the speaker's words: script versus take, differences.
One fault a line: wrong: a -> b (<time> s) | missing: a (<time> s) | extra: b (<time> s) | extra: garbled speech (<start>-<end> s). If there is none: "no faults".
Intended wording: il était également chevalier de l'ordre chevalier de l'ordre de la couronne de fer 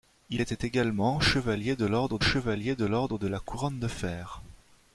no faults